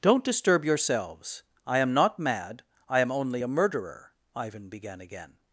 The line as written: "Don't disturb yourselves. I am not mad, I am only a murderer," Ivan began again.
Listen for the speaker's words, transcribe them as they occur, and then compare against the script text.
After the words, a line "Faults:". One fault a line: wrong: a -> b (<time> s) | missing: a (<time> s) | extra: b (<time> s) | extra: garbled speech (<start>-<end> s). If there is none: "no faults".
"Don't disturb yourselves. I am not mad, I am only a murderer," Ivan began again.
Faults:
no faults